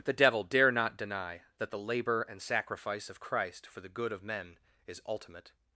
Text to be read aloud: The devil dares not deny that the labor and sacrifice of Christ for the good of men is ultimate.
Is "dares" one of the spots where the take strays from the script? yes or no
yes